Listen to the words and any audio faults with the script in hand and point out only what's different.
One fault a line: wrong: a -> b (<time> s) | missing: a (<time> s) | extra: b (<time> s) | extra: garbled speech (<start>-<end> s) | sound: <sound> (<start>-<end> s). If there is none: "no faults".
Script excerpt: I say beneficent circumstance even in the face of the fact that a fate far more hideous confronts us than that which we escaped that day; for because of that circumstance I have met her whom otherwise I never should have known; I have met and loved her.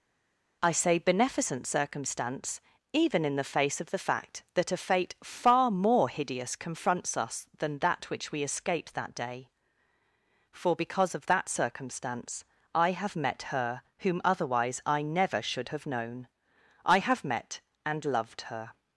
no faults